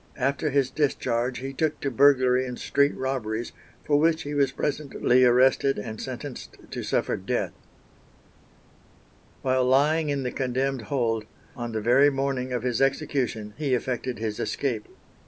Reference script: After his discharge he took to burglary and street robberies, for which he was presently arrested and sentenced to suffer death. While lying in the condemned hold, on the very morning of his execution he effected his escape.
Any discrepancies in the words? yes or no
no